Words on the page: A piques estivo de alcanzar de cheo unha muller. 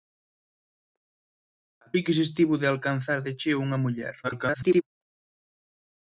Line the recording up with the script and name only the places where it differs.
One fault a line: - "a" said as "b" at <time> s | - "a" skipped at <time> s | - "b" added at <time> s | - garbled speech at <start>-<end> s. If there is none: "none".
- garbled speech at 4.2-4.8 s